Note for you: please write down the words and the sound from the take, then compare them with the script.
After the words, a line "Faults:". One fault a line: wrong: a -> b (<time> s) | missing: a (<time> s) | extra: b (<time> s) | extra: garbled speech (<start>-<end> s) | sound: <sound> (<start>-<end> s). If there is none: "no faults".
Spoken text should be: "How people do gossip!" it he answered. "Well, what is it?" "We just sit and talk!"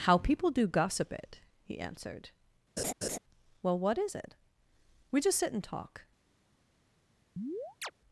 "How people do gossip!" it he answered. "Well, what is it?" "We just sit and talk!"
Faults:
sound: laugh (2.8-3.2 s)
sound: chirp (7.4-7.9 s)